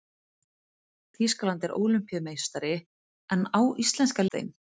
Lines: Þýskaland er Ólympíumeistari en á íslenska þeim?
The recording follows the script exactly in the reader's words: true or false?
true